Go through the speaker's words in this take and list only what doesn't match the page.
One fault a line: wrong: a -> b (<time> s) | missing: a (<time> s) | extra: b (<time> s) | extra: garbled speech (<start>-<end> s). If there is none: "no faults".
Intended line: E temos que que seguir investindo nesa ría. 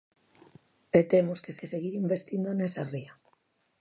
no faults